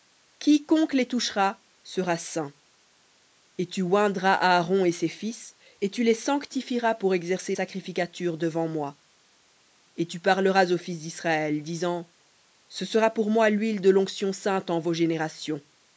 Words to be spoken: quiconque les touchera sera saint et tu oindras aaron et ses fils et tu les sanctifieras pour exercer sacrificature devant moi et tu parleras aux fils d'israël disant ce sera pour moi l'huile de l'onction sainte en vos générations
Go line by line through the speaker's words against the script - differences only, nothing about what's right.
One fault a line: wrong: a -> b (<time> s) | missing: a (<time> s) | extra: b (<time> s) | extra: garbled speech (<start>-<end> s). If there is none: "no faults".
no faults